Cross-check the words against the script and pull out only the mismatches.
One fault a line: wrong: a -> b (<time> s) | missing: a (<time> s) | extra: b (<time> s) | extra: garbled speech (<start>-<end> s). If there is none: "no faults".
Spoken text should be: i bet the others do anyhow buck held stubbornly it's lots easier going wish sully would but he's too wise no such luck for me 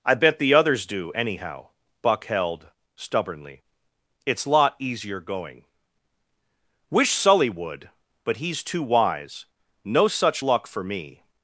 wrong: lots -> lot (4.5 s)